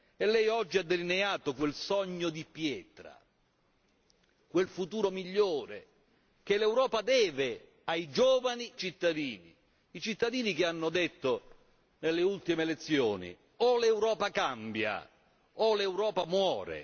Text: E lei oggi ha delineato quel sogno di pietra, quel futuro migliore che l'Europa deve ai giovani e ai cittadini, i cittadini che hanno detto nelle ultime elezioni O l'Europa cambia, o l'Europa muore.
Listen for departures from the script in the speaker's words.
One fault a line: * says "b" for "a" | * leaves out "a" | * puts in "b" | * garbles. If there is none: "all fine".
* leaves out "e ai"